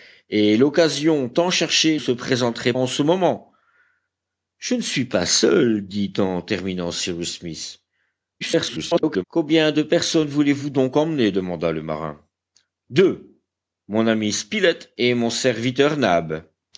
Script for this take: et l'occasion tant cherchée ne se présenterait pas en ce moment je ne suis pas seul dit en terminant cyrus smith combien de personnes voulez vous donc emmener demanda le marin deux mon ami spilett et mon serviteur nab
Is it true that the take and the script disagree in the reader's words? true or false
true